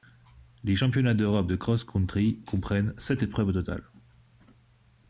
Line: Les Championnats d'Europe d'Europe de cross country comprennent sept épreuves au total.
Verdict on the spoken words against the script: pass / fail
fail